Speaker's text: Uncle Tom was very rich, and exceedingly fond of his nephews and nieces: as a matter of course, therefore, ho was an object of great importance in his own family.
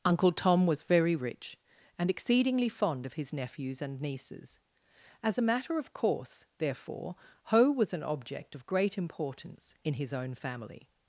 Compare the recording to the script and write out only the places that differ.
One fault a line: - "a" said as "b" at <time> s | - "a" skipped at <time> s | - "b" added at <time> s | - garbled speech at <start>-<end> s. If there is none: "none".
none